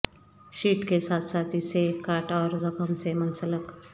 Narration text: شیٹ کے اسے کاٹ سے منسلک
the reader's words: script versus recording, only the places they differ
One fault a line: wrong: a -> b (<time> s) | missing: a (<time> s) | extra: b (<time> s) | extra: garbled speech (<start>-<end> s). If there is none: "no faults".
extra: ساتھ ساتھ (1.0 s)
extra: اور زخم (2.3 s)